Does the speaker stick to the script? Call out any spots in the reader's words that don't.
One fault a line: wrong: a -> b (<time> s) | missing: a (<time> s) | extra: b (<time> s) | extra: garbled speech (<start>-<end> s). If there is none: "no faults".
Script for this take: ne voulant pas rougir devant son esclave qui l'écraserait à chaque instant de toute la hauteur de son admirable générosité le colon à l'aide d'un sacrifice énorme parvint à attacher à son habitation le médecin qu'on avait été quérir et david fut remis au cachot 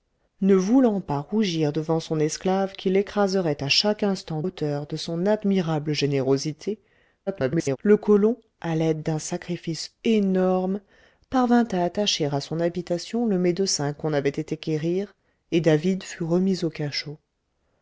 missing: de toute la (4.4 s)
extra: garbled speech (7.3-7.8 s)